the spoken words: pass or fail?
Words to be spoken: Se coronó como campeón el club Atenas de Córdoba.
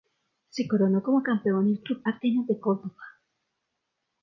pass